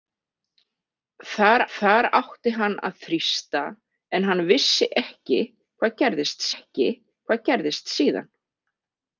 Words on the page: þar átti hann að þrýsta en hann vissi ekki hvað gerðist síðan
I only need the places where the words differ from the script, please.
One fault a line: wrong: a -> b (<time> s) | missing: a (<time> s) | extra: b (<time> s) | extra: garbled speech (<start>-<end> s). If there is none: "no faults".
extra: þar (1.8 s)
extra: ekki hvað gerðist (6.6 s)